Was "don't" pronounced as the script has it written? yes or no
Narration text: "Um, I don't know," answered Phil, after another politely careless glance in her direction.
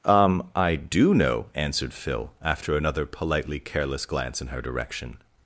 no